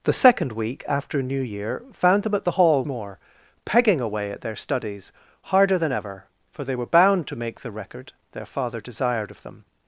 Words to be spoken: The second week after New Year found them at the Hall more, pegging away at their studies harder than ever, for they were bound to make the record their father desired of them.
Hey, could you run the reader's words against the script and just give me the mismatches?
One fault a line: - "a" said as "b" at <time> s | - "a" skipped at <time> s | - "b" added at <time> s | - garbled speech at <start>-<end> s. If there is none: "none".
none